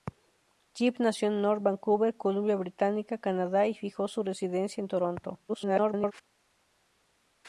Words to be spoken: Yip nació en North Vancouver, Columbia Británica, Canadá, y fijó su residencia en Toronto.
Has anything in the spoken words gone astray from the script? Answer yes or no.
yes